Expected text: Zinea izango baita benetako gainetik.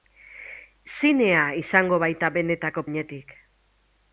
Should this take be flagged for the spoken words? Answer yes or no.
no